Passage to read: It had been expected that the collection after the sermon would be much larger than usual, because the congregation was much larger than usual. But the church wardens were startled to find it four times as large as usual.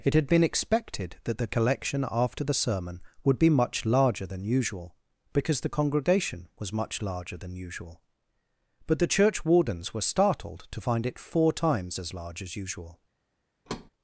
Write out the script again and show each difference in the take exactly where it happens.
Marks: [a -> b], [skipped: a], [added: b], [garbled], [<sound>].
It had been expected that the collection after the sermon would be much larger than usual, because the congregation was much larger than usual. But the church wardens were startled to find it four times as large as usual. [thud]